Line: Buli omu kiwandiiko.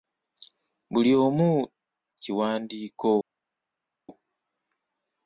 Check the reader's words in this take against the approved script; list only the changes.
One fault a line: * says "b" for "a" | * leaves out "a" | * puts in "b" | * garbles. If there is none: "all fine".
all fine